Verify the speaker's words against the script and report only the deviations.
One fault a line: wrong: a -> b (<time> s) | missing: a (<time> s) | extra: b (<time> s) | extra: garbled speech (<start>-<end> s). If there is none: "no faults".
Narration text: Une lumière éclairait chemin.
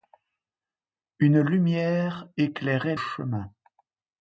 no faults